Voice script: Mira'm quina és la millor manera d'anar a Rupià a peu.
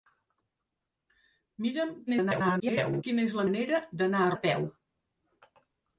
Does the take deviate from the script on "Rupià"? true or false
true